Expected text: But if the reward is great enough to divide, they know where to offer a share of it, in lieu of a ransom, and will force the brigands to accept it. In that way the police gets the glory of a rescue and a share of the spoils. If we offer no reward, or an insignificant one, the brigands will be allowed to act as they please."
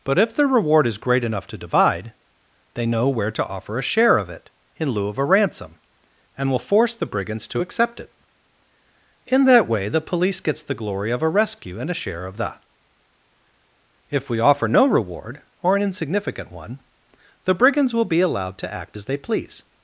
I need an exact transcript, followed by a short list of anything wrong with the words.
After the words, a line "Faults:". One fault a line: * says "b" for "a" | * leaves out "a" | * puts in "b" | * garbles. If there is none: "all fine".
But if the reward is great enough to divide, they know where to offer a share of it, in lieu of a ransom, and will force the brigands to accept it. In that way the police gets the glory of a rescue and a share of the. If we offer no reward, or an insignificant one, the brigands will be allowed to act as they please."
Faults:
* leaves out "spoils"